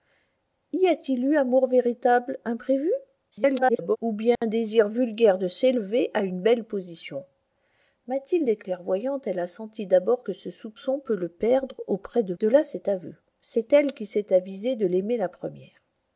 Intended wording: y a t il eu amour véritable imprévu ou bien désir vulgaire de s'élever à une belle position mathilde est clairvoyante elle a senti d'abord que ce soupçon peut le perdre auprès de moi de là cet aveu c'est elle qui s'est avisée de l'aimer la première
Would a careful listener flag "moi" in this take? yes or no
yes